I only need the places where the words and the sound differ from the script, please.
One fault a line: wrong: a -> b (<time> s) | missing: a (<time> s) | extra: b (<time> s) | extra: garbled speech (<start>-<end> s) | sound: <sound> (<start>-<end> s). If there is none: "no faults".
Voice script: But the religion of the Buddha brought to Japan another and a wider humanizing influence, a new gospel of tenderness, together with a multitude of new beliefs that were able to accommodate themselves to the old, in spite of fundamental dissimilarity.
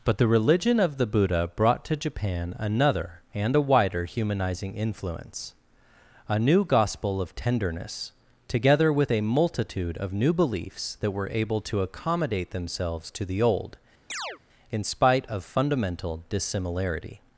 sound: chirp (14.1-14.4 s)